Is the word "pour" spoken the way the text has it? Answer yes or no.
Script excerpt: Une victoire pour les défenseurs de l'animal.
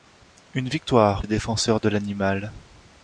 no